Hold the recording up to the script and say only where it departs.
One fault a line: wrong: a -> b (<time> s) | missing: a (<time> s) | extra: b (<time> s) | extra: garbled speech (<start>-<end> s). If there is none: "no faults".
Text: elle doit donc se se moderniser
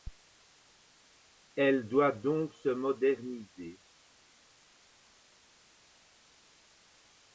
no faults